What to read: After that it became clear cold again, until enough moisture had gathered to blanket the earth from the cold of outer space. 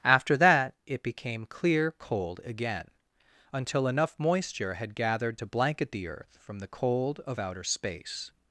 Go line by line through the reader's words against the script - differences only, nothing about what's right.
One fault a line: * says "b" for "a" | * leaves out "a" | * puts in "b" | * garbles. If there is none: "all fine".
all fine